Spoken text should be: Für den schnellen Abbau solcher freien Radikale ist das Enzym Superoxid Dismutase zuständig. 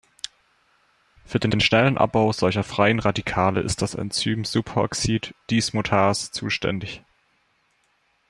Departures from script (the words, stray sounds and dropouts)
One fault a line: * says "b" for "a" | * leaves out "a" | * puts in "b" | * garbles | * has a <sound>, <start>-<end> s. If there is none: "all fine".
* puts in "den"